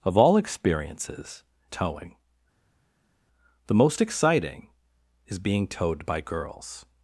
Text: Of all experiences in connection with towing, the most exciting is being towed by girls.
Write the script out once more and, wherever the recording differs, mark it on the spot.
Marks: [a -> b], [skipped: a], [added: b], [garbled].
Of all experiences [skipped: in connection with] towing, the most exciting is being towed by girls.